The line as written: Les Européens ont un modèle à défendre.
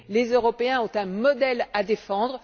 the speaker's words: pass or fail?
pass